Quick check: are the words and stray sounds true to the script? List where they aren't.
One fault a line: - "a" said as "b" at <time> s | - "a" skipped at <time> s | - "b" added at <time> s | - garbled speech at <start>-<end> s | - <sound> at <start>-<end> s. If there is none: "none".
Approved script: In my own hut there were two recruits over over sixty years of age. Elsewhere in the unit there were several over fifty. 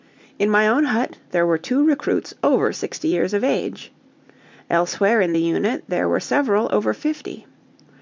- "over" skipped at 2.7 s